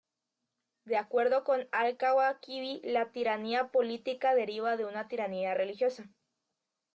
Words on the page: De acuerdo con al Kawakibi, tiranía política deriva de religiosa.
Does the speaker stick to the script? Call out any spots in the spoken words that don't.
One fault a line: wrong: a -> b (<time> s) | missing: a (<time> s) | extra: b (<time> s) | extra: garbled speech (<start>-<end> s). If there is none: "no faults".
extra: la (2.9 s)
extra: una tiranía (4.9 s)